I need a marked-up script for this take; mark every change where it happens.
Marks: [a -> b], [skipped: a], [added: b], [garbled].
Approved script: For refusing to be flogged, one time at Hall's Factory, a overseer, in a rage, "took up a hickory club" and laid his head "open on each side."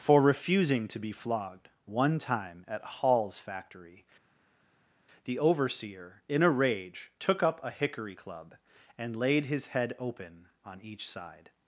For refusing to be flogged, one time at Hall's Factory, [a -> the] overseer, in a rage, "took up a hickory club" and laid his head "open on each side."